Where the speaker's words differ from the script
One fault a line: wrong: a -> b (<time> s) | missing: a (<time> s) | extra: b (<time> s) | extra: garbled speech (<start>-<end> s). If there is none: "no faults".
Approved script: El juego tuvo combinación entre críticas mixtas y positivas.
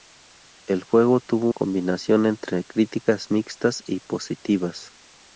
no faults